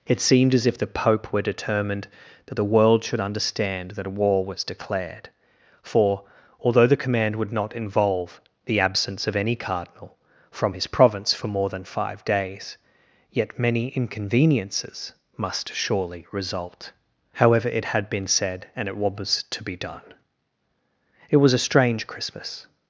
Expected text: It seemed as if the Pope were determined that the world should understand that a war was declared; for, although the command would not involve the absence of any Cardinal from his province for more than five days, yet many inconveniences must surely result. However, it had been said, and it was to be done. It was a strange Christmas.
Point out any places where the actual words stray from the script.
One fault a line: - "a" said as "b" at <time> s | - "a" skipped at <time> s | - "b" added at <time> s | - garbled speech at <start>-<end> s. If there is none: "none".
none